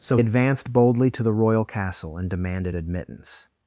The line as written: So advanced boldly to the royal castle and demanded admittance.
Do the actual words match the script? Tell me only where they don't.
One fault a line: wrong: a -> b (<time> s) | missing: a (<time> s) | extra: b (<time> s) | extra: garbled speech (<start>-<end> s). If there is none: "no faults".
no faults